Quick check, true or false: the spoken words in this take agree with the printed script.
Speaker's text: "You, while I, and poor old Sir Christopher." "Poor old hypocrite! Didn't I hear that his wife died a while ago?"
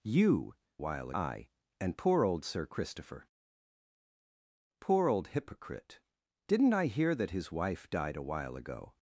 true